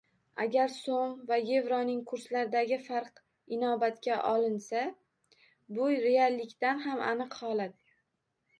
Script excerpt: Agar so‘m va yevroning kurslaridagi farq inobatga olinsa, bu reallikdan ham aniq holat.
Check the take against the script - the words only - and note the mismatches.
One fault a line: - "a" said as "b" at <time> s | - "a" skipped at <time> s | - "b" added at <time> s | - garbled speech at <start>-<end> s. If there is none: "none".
none